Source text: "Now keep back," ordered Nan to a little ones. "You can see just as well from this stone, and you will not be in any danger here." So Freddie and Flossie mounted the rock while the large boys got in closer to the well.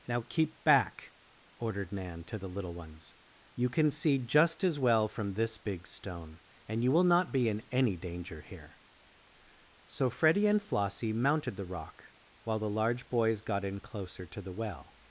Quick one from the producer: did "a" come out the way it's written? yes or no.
no